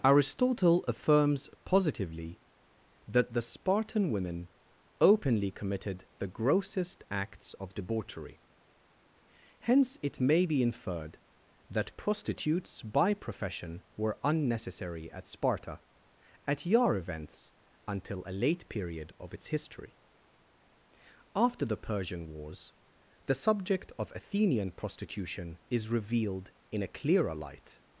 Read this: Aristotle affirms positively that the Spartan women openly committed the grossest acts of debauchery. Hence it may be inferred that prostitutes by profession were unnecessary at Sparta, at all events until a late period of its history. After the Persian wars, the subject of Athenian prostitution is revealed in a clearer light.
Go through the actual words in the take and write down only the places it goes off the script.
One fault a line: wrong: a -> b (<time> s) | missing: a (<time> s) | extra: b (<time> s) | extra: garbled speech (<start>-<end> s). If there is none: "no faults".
wrong: all -> yar (16.6 s)